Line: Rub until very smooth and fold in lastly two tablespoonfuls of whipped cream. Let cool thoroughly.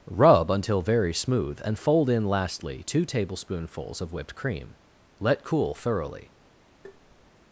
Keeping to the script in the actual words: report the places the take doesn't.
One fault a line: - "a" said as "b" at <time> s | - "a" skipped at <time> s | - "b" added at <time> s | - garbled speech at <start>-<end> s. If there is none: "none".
none